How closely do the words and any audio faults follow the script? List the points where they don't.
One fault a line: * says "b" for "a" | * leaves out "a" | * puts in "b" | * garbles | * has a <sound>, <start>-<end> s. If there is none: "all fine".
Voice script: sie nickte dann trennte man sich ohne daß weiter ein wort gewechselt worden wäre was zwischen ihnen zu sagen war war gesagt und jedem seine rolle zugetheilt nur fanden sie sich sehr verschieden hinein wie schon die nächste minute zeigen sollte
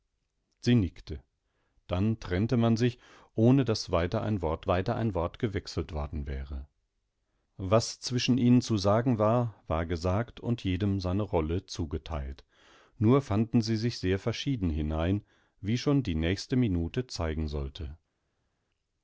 * puts in "weiter ein wort"